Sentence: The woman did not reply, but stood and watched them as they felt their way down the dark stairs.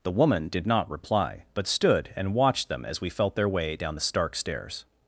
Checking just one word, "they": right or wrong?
wrong